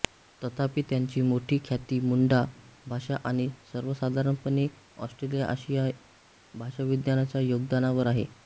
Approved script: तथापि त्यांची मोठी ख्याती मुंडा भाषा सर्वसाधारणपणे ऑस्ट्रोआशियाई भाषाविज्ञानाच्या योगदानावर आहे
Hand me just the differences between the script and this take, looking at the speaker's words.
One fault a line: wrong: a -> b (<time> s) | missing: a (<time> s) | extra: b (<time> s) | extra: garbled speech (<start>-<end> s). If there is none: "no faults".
extra: आणि (3.2 s)